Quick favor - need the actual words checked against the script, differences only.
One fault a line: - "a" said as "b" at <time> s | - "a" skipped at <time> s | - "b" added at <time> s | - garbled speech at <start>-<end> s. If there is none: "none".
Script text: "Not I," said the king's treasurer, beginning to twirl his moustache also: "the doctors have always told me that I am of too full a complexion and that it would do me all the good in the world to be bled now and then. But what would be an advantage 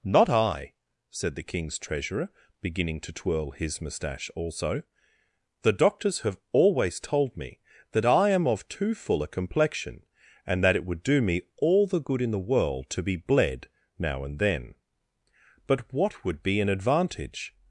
none